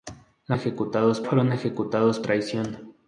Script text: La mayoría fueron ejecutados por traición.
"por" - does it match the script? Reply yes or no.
no